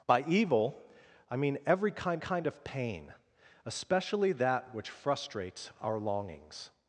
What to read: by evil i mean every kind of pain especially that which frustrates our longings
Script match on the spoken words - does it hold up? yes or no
no